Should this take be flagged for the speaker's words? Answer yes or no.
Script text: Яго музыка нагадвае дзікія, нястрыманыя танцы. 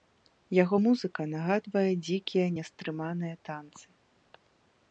no